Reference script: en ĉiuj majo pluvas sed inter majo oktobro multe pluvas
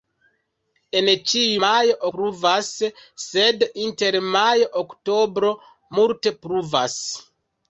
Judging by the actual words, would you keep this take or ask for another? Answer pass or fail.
pass